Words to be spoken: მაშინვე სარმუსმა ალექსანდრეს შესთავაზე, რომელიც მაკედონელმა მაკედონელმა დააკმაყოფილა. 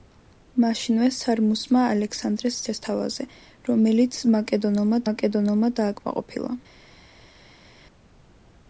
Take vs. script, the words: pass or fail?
pass